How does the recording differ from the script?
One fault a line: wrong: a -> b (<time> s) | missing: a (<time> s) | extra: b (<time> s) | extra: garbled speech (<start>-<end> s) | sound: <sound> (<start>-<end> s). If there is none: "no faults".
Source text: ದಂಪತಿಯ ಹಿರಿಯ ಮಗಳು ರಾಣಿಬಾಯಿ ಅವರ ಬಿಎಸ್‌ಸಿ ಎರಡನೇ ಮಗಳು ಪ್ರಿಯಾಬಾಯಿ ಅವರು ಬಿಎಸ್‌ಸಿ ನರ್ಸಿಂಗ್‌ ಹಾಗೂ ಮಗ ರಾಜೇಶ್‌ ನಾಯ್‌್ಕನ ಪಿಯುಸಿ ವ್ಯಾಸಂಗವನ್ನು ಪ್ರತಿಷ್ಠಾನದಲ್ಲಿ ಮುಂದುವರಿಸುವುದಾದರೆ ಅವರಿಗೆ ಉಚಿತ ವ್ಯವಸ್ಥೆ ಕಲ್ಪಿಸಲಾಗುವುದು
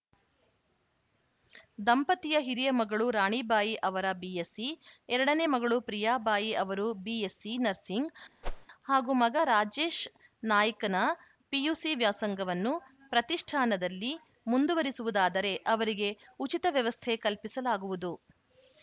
sound: whoosh (8.4-8.7 s)